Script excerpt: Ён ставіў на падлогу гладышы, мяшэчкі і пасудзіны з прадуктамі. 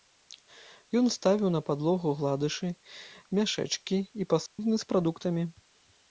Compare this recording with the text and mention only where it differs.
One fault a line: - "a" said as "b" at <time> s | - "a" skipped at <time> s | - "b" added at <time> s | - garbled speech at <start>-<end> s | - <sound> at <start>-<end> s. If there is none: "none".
- dropout at 4.5-4.6 s